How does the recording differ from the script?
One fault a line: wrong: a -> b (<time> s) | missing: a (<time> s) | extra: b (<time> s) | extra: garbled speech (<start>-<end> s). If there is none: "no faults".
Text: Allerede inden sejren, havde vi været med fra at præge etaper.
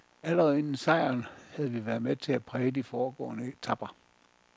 wrong: fra -> til (2.1 s)
extra: de foregående (2.7 s)